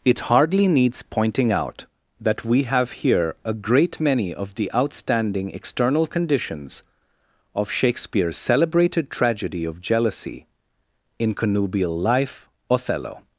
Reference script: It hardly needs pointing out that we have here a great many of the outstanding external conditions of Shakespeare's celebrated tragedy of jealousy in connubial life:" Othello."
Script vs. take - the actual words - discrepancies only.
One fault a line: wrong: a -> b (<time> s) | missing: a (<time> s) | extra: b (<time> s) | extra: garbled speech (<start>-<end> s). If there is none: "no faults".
no faults